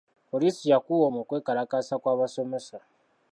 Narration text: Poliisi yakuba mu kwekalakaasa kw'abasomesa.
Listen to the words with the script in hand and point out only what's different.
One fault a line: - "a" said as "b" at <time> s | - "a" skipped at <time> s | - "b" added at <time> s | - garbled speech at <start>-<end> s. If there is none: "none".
none